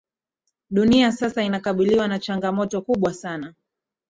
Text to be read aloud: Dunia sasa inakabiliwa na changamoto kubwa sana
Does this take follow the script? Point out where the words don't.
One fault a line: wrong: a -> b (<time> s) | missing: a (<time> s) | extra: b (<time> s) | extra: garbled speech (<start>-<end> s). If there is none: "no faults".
no faults